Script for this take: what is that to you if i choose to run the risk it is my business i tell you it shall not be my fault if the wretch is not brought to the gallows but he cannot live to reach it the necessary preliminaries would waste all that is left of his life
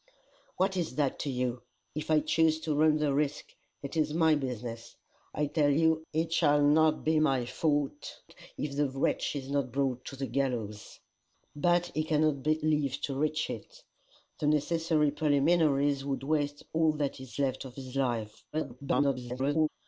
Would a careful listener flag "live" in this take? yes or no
no